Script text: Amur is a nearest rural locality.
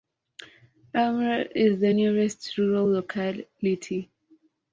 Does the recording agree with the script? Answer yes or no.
no